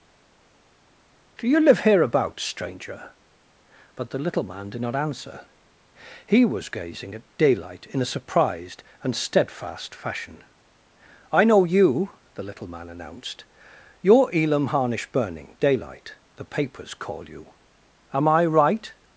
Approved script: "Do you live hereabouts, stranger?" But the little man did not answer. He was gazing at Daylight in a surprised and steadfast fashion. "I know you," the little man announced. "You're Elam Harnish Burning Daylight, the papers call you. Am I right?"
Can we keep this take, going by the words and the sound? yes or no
yes